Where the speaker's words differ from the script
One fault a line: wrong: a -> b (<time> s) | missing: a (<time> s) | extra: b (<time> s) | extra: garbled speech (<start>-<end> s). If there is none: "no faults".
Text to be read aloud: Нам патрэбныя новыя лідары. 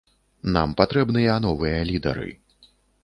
no faults